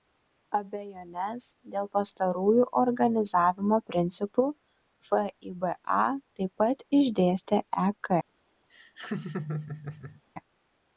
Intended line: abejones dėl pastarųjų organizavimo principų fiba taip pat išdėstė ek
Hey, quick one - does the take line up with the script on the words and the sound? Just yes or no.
no